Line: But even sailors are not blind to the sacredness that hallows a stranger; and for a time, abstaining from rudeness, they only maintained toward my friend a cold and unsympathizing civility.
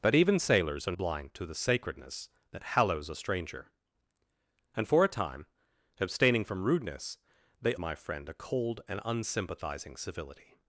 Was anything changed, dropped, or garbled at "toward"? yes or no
yes